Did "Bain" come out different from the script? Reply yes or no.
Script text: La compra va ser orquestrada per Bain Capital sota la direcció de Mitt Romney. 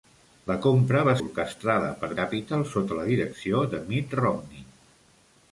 yes